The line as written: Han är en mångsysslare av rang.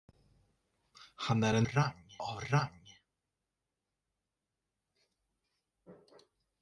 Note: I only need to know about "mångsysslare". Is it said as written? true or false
false